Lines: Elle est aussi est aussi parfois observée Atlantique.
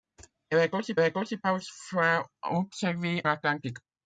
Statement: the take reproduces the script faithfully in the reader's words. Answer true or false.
true